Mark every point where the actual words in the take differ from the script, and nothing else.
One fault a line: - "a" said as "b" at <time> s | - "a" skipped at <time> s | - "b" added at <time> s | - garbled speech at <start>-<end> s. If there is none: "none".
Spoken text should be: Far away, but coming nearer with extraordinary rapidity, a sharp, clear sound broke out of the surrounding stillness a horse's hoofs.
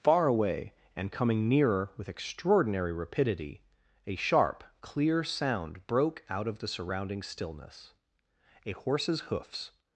- "but" said as "and" at 0.9 s